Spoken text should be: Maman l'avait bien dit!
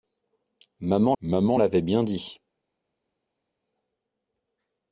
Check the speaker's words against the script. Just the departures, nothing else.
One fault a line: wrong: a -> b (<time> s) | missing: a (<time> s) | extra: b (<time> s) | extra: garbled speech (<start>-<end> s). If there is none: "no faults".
extra: maman (1.2 s)